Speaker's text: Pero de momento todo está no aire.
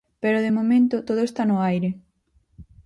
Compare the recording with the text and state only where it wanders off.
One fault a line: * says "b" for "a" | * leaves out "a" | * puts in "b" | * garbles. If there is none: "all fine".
all fine